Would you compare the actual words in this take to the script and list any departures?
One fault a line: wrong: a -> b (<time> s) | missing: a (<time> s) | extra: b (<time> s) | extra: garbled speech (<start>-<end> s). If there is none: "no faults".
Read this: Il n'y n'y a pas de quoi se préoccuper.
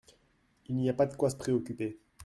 missing: n'y (0.9 s)